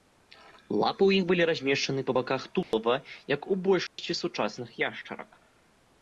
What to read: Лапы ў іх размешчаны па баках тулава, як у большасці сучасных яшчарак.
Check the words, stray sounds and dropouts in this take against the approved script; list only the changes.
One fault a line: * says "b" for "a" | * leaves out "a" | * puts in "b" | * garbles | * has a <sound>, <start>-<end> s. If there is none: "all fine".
* puts in "былі"
* has a dropout, 2.6-2.7 s
* has a dropout, 3.9-4.0 s